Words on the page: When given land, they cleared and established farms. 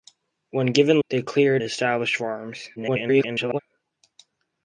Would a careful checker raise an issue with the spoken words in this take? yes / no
yes